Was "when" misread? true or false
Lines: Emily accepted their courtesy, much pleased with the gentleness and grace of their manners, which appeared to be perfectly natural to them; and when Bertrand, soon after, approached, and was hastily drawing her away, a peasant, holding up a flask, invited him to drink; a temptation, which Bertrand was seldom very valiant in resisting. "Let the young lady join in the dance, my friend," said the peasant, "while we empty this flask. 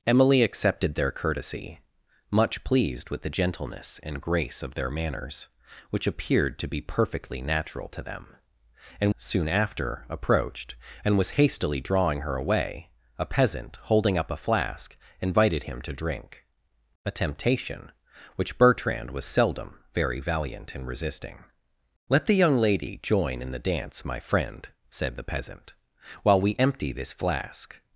true